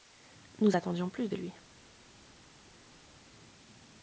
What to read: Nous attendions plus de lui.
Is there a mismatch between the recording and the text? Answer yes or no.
no